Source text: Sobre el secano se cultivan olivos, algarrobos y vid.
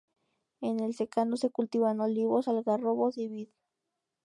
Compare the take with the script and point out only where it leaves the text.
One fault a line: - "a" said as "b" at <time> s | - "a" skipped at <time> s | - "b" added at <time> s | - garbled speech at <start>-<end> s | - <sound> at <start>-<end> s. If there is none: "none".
- "Sobre" said as "En" at 0.6 s